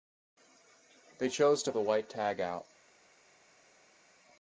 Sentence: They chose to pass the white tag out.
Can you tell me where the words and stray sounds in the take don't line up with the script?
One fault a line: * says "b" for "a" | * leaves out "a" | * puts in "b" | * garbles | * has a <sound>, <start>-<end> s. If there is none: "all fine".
* leaves out "pass"